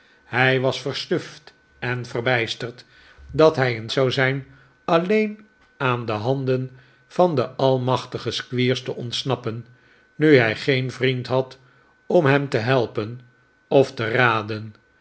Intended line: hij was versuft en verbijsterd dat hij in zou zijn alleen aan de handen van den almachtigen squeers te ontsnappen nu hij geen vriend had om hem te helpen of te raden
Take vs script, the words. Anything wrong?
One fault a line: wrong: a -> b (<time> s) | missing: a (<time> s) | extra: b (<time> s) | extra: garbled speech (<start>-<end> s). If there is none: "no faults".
no faults